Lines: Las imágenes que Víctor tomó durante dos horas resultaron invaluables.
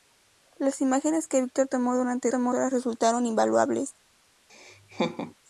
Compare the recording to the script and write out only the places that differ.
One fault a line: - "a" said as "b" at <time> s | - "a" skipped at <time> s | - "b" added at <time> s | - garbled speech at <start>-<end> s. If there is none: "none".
- "dos" said as "tomó" at 2.3 s